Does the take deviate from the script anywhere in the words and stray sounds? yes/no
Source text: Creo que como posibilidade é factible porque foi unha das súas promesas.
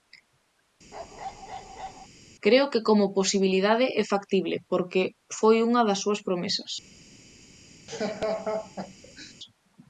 yes